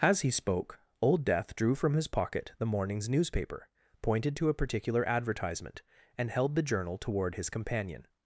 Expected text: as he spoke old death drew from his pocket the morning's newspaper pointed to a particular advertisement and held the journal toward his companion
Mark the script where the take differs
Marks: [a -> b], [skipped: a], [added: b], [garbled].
as he spoke old death drew from his pocket the morning's newspaper pointed to a particular advertisement and held the journal toward his companion